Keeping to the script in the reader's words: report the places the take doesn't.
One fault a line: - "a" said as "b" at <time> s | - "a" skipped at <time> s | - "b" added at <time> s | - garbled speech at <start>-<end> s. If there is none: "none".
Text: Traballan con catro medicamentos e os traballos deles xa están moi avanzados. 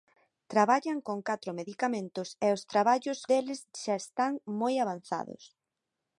none